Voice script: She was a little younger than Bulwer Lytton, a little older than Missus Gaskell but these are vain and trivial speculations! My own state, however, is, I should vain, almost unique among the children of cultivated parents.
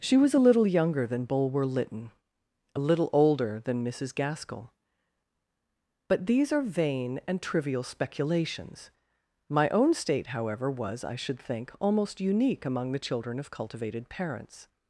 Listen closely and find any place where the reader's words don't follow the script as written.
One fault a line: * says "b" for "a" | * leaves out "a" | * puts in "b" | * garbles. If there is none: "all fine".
* says "was" for "is"
* says "think" for "vain"